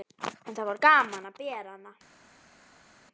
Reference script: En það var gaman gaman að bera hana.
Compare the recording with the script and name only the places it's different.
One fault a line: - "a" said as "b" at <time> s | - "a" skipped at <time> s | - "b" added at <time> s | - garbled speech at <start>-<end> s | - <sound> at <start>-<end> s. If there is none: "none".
- "gaman" skipped at 1.3 s